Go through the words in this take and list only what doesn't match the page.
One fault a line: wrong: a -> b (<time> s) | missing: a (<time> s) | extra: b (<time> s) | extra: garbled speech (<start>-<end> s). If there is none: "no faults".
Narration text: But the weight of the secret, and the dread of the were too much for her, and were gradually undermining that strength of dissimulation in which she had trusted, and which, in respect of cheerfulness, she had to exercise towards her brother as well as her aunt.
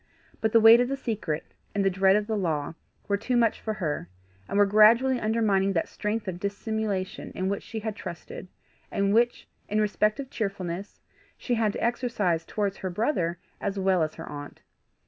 extra: law (2.4 s)